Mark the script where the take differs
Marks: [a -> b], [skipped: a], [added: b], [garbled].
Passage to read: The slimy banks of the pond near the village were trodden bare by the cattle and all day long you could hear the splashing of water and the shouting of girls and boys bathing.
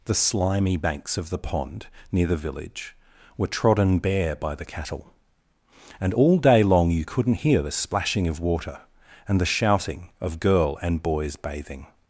The slimy banks of the pond near the village were trodden bare by the cattle and all day long you [could -> couldn't] hear the splashing of water and the shouting of [girls -> girl] and boys bathing.